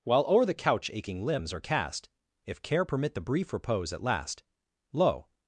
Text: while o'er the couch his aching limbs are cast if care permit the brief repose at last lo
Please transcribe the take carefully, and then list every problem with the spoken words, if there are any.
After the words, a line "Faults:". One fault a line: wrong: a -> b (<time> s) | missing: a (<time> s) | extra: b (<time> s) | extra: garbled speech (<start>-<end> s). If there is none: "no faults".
while o'er the couch aching limbs are cast if care permit the brief repose at last lo
Faults:
missing: his (0.9 s)